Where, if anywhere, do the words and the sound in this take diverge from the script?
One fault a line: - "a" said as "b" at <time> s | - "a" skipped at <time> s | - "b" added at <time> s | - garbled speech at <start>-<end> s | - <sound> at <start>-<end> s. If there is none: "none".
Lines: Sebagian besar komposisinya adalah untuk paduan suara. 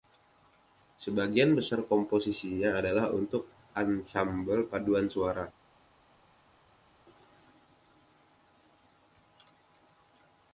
- "ansambel" added at 3.8 s